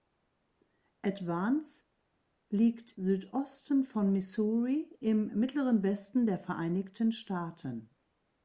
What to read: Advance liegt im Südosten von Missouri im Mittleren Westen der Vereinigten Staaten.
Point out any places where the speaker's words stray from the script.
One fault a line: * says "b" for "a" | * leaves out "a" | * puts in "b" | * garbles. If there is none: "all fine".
* leaves out "im"